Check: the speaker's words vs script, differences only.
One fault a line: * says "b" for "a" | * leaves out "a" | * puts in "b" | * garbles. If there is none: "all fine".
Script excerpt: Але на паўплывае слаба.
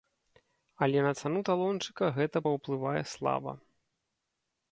* puts in "цану талончыка гэта"